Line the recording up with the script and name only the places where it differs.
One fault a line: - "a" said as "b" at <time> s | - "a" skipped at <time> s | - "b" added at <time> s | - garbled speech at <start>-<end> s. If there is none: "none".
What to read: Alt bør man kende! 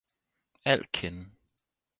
- "bør man" skipped at 0.9 s